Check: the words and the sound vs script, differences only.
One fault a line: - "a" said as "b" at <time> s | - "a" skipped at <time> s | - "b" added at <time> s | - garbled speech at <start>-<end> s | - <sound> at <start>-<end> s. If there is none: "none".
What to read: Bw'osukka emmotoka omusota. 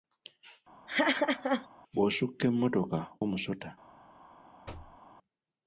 - laugh at 0.9-1.7 s
- thud at 4.7-5.0 s